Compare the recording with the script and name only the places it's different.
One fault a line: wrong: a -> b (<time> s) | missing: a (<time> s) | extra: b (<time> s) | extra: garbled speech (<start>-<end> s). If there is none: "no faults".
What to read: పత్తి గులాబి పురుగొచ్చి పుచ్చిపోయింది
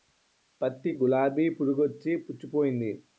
no faults